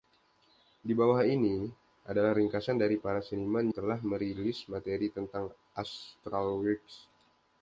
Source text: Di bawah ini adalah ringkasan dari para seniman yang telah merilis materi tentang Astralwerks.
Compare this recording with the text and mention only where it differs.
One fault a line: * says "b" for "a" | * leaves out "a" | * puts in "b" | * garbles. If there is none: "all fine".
* leaves out "yang"